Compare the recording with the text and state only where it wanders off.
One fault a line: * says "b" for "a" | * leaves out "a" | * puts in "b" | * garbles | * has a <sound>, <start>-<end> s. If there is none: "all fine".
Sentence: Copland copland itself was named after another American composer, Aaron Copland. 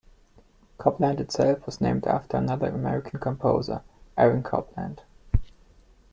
* leaves out "copland"